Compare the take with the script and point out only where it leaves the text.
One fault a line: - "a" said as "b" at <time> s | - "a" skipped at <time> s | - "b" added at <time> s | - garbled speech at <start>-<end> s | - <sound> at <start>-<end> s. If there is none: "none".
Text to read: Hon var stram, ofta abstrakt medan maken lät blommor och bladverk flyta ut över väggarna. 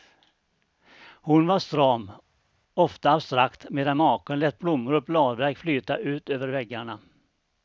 none